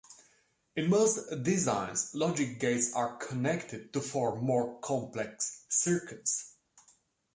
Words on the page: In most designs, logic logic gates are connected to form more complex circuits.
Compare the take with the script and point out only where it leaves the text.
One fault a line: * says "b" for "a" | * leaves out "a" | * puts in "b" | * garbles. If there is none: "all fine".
* leaves out "logic"